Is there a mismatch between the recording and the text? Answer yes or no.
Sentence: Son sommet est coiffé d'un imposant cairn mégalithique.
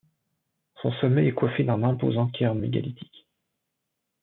no